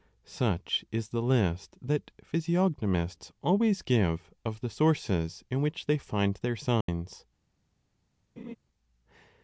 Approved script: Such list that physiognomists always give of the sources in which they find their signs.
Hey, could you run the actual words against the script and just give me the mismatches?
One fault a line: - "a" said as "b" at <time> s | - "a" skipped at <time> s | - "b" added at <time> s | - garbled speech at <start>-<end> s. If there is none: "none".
- "is the" added at 0.9 s